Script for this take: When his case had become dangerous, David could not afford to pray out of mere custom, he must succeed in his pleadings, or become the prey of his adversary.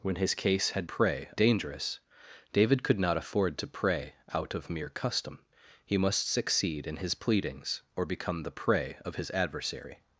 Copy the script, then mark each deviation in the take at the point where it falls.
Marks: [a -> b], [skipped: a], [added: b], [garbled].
When his case had [become -> prey] dangerous, David could not afford to pray out of mere custom, he must succeed in his pleadings, or become the prey of his adversary.